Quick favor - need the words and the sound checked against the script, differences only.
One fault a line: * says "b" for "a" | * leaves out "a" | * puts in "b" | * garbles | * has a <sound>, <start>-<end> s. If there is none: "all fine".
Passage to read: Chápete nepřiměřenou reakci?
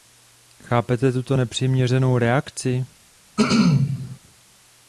* puts in "tuto"
* has a throat clearing, 3.4-4.2 s